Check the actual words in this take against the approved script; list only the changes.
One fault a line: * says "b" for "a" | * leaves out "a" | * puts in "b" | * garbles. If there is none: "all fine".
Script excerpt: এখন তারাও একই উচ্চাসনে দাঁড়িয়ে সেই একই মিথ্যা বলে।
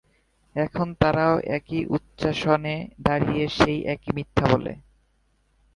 all fine